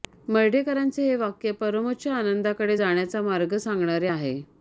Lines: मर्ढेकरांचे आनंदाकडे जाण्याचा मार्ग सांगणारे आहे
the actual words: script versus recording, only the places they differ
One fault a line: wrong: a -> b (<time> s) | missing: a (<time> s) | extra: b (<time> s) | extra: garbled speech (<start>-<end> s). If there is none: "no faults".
extra: हे वाक्य परमोच्च (1.0 s)